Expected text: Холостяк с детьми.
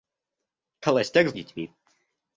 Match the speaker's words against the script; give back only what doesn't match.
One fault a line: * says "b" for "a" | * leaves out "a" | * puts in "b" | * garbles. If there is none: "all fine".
all fine